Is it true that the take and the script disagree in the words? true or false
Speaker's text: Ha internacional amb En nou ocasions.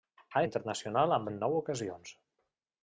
false